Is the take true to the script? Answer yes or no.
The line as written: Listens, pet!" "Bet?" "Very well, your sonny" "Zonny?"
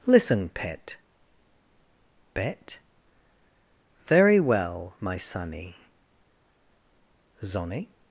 no